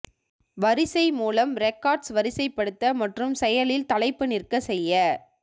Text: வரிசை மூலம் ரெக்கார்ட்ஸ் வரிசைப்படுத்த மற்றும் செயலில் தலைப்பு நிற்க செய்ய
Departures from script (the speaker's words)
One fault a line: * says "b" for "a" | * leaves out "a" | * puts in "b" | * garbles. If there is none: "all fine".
all fine